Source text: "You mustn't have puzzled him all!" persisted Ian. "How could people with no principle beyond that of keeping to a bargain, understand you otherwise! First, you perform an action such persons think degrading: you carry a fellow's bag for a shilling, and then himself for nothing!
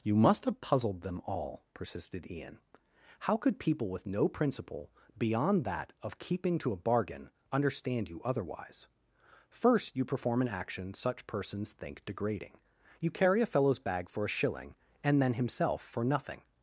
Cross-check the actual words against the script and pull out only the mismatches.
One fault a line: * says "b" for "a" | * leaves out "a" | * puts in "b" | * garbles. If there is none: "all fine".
* says "must" for "mustn't"
* says "them" for "him"